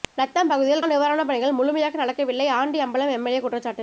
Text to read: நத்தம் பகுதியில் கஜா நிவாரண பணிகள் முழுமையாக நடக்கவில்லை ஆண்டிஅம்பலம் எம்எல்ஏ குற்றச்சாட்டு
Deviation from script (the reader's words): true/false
true